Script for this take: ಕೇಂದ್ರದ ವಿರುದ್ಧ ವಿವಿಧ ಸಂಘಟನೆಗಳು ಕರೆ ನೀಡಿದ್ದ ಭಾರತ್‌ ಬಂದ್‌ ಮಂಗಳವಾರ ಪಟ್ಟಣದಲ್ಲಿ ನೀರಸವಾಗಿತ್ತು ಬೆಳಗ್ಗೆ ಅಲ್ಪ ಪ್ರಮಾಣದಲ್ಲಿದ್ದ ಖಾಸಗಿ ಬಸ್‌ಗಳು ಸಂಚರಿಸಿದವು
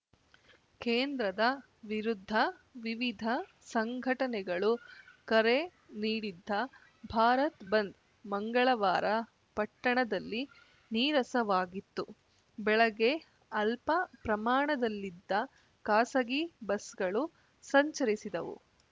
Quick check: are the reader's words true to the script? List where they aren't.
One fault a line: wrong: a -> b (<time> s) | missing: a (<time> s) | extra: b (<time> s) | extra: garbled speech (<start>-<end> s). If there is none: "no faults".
no faults